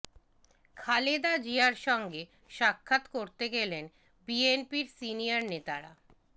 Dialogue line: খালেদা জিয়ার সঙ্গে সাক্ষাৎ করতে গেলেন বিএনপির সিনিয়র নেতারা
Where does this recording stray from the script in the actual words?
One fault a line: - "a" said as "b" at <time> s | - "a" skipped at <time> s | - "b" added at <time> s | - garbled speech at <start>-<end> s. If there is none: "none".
none